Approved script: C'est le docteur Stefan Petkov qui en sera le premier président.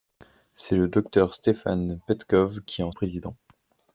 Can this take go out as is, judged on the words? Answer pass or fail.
fail